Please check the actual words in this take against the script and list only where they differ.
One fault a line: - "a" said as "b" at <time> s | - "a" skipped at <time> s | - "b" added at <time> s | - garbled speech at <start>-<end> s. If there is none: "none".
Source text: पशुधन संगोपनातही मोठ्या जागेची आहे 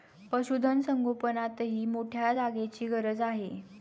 - "गरज" added at 2.9 s